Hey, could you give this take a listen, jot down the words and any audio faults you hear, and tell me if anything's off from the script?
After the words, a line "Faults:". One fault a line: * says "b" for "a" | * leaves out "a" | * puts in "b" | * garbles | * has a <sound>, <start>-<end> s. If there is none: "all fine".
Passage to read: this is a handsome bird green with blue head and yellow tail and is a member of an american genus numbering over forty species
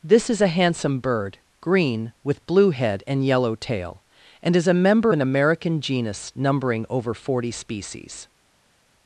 this is a handsome bird green with blue head and yellow tail and is a member an american genus numbering over forty species
Faults:
* leaves out "of"